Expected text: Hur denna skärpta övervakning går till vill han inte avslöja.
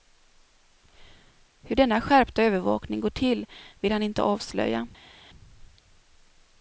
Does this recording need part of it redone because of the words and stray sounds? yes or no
no